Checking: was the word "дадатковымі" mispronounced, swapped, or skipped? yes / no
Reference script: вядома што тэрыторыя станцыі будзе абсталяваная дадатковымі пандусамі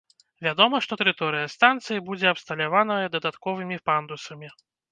no